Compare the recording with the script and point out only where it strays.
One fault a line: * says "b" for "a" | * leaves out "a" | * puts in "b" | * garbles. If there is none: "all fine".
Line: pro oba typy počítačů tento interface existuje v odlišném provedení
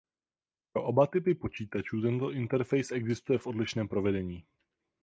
all fine